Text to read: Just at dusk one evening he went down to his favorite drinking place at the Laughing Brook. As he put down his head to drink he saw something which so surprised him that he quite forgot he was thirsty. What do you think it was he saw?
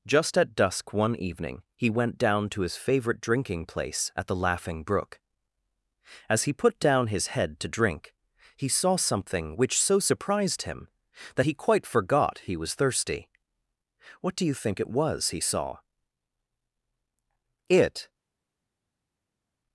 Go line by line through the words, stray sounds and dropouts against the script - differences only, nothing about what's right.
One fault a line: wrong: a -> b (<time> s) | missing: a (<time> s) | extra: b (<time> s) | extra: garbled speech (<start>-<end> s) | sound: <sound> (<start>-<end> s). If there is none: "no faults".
extra: It (17.7 s)